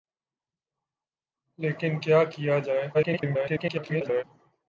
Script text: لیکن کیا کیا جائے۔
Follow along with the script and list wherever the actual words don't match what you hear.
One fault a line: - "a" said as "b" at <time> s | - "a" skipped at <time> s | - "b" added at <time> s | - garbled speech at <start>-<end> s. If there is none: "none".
- garbled speech at 2.9-4.2 s